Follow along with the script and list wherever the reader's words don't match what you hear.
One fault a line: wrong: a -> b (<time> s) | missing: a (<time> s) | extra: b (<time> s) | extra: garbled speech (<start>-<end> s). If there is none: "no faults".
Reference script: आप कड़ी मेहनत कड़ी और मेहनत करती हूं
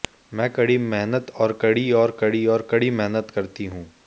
wrong: आप -> मैं (0.3 s)
extra: और (1.3 s)
extra: कड़ी और कड़ी (2.2 s)